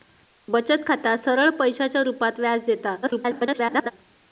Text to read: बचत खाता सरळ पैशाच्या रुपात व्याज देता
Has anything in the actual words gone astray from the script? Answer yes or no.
yes